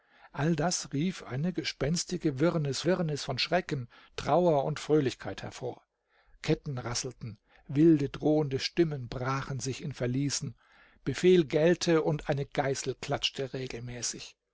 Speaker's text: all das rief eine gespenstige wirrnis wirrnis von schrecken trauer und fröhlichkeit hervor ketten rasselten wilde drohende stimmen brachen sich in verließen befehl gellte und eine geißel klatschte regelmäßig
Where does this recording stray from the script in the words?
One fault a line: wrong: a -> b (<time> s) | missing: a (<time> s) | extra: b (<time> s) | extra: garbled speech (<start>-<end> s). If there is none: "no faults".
no faults